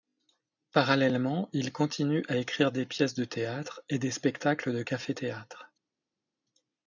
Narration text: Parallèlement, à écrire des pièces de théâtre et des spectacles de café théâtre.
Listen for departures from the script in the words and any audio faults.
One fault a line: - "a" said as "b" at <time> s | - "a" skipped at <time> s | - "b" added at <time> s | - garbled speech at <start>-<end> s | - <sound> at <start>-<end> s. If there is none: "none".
- "il continue" added at 1.5 s